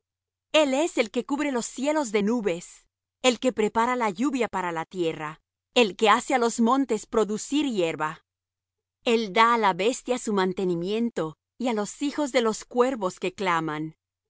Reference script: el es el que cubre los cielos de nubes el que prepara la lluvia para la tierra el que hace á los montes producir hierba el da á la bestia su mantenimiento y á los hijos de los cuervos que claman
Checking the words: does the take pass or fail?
pass